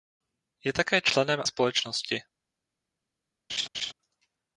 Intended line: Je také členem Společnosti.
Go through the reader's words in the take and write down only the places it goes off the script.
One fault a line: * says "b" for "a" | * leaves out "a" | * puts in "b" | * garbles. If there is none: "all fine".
all fine